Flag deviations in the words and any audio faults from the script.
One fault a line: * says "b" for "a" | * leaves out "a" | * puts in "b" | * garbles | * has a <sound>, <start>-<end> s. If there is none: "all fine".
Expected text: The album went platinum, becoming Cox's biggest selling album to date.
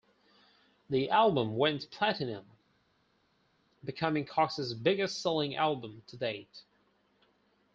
all fine